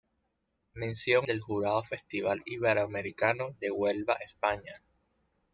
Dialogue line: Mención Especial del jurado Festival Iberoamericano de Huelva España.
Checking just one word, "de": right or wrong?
right